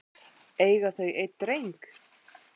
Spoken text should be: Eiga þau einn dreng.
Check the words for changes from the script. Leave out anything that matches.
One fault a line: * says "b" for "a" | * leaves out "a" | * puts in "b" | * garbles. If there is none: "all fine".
all fine